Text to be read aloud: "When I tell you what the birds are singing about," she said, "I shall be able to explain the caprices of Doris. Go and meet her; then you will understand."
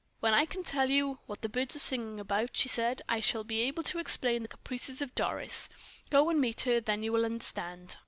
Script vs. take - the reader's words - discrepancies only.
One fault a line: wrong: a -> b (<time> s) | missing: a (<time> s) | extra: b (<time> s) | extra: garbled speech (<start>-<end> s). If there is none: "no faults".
extra: can (0.5 s)